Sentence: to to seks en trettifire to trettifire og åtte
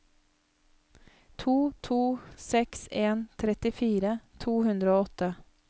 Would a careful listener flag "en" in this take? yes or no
no